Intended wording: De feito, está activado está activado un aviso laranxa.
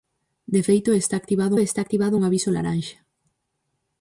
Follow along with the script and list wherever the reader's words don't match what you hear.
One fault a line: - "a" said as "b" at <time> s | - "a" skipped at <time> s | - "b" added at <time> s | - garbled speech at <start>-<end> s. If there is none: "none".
none